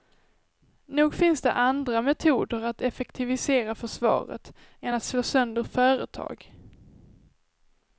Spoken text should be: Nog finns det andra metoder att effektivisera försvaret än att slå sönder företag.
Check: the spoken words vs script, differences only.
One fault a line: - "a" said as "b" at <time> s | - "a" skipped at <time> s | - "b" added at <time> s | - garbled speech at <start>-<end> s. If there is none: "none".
none